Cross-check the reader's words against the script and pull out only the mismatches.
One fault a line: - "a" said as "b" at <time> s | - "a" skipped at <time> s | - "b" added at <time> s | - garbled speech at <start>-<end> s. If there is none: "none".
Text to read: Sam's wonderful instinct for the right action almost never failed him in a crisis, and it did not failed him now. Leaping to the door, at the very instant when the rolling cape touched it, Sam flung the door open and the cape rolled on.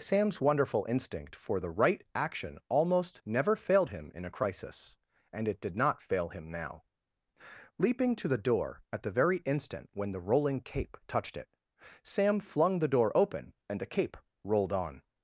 - "failed" said as "fail" at 6.0 s